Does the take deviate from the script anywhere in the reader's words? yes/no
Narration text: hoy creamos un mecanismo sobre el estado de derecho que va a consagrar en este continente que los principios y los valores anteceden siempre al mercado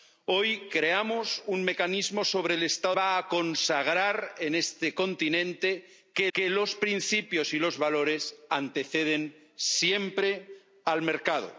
yes